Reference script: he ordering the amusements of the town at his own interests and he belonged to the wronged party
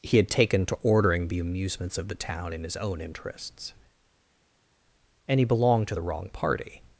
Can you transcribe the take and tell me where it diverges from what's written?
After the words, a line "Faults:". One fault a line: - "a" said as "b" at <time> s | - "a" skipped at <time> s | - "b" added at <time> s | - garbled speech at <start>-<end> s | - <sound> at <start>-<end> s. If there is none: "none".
he had taken to ordering the amusements of the town in his own interests and he belonged to the wrong party
Faults:
- "had taken to" added at 0.2 s
- "at" said as "in" at 2.5 s
- "wronged" said as "wrong" at 6.0 s